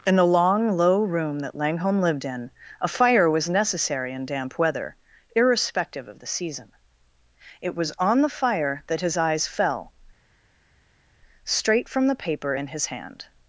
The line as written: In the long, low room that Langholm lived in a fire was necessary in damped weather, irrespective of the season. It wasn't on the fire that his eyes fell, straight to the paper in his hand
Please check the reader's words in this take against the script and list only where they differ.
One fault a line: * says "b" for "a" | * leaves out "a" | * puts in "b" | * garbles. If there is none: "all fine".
* says "damp" for "damped"
* says "was" for "wasn't"
* says "from" for "to"